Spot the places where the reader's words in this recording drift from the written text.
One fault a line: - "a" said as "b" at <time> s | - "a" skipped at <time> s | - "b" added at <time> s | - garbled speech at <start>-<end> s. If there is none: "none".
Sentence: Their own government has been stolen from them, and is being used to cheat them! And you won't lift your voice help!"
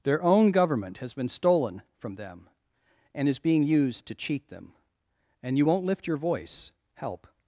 none